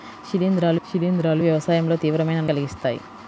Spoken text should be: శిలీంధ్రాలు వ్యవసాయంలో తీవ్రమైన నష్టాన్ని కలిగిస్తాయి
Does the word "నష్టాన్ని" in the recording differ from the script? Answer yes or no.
yes